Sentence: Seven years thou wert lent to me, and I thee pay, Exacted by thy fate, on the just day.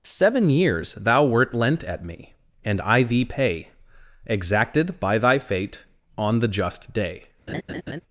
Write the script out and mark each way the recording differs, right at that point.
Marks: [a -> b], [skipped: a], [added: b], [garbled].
Seven years thou wert lent [to -> at] me, and I thee pay, Exacted by thy fate, on the just day.